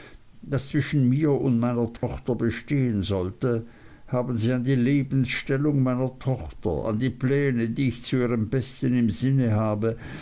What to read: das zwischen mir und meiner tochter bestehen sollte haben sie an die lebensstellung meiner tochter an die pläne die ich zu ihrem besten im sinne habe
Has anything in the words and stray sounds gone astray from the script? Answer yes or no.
yes